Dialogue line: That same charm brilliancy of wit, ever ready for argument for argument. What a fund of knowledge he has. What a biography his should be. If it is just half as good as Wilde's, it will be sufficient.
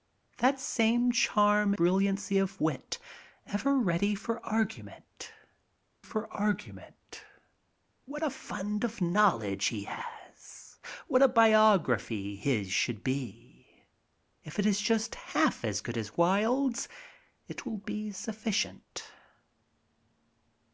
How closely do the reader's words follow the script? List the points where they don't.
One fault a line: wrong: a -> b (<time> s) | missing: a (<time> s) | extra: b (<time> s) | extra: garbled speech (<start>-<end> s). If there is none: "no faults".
no faults